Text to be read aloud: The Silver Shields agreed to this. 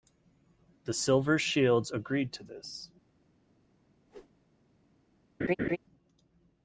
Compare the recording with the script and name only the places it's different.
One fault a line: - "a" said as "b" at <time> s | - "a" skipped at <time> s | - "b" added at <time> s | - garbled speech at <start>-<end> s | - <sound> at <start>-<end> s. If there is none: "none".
- whoosh at 4.1-4.4 s
- laugh at 5.4-5.8 s